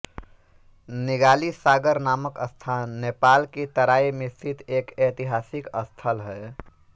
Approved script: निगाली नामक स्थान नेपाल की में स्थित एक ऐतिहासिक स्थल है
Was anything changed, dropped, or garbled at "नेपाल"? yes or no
no